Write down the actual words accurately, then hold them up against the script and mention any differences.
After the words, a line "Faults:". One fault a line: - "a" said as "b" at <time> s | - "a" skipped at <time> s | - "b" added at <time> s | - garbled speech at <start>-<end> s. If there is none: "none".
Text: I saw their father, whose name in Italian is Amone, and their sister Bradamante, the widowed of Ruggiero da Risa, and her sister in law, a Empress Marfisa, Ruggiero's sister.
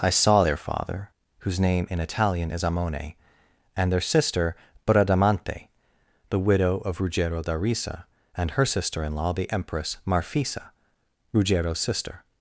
I saw their father, whose name in Italian is Amone, and their sister Bradamante, the widow of Ruggiero da Risa, and her sister in law, the Empress Marfisa, Ruggiero's sister.
Faults:
- "widowed" said as "widow" at 6.4 s
- "a" said as "the" at 9.3 s